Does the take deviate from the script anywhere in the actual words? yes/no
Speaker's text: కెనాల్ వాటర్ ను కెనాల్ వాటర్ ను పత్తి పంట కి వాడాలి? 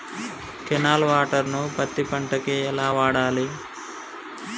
yes